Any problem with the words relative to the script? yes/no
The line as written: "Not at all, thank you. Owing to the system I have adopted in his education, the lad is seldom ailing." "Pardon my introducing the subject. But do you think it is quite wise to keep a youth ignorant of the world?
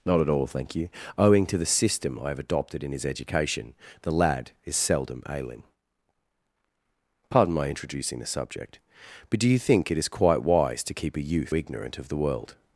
no